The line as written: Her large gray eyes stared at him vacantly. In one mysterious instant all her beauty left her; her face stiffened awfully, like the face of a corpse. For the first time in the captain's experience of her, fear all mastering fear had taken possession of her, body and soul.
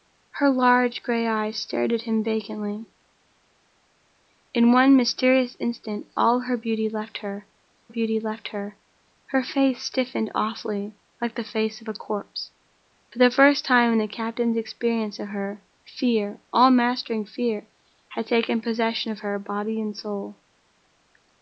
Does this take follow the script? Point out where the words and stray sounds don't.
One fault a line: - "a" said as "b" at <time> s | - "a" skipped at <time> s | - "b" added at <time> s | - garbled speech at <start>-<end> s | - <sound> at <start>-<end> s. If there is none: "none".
- "beauty left her" added at 7.9 s